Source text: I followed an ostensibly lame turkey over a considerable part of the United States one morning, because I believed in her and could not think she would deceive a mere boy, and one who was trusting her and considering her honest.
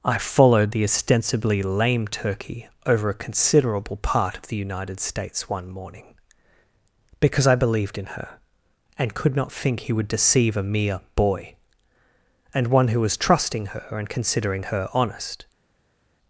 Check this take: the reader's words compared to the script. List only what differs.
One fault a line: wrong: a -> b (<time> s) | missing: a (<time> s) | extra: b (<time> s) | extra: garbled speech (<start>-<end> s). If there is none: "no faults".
wrong: an -> the (0.7 s)
wrong: she -> he (9.8 s)